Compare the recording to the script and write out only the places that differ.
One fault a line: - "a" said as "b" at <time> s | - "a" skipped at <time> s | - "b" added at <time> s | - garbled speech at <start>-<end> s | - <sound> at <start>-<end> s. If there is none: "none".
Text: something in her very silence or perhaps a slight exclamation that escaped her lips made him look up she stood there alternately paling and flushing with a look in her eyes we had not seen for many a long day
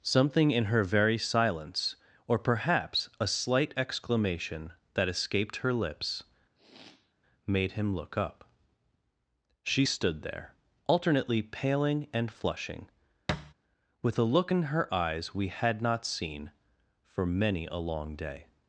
- sniff at 6.6-7.1 s
- thud at 13.3-13.5 s